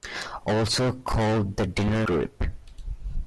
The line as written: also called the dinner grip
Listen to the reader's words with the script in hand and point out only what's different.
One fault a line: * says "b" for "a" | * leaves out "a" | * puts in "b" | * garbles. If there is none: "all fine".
all fine